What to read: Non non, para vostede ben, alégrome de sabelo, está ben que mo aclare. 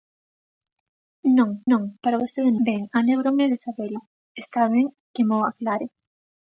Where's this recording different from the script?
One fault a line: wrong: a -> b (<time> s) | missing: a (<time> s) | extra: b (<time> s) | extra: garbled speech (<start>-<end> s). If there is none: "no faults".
no faults